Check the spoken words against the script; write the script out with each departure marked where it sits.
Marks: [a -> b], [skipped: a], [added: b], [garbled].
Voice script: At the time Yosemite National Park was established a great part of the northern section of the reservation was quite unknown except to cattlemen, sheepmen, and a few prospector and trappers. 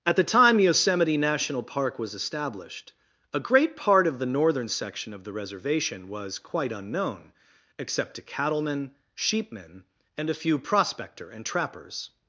At the time Yosemite National Park was established a great part of the northern section of the reservation was quite unknown except to cattlemen, sheepmen, and a few prospector and trappers.